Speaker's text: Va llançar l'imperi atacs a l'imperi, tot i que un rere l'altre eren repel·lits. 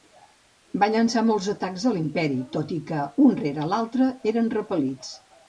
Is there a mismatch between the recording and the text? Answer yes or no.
yes